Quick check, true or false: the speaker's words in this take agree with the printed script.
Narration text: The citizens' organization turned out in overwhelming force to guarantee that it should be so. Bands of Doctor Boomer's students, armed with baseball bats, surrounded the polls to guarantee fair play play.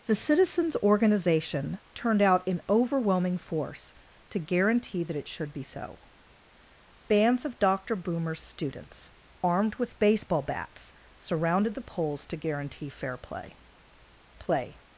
true